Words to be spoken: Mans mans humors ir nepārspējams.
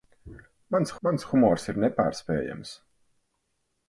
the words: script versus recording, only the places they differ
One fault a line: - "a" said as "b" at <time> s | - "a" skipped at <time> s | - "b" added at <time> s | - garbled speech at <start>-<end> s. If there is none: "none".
none